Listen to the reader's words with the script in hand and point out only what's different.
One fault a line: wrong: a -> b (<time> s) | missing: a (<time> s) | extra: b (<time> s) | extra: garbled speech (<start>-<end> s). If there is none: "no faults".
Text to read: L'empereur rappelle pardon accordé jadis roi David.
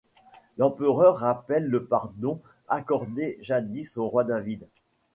extra: le (1.7 s)
extra: au (4.0 s)